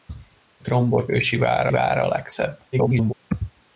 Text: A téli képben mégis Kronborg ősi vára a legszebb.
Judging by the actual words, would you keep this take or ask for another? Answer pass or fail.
fail